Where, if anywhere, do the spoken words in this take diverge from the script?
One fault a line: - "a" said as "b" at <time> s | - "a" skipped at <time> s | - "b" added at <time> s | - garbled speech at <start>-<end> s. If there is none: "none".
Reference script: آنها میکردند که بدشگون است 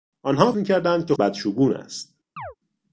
none